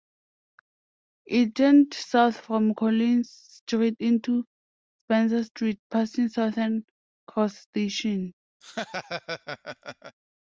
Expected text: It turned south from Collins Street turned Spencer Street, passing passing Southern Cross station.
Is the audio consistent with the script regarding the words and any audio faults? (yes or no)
no